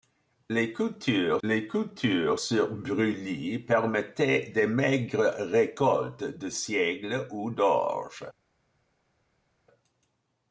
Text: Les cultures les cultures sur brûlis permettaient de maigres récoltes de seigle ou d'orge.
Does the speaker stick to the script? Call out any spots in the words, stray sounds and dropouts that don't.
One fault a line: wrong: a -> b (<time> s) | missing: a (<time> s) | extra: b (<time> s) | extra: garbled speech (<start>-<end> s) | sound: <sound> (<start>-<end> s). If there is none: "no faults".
no faults